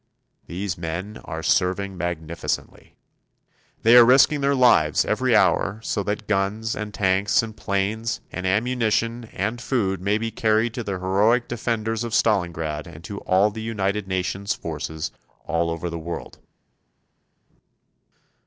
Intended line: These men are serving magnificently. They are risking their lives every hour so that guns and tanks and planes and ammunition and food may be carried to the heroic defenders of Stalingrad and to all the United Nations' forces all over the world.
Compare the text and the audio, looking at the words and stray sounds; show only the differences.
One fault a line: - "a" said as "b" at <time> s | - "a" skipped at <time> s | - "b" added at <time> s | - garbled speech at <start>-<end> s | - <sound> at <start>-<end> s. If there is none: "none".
none